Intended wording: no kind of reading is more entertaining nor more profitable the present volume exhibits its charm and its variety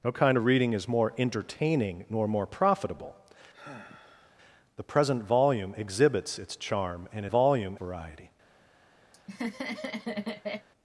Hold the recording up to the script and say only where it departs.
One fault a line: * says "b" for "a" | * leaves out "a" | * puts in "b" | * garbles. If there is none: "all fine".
* says "volume" for "its"